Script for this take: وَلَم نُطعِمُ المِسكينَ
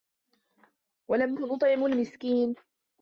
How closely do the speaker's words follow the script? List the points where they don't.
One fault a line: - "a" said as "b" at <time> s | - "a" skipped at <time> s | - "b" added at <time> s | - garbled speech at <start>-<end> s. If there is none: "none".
none